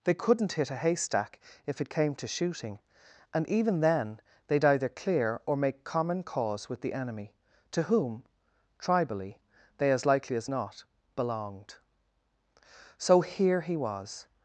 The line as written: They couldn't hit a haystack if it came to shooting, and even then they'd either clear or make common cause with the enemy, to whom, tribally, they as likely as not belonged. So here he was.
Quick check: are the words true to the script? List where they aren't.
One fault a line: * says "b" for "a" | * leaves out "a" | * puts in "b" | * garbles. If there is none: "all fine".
all fine